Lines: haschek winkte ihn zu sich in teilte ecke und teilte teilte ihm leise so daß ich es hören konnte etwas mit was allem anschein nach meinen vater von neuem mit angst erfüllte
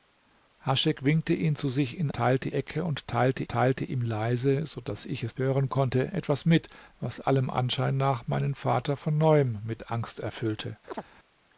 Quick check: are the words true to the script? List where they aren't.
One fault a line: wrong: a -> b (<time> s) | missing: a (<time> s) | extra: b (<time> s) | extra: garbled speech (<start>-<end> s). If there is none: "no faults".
no faults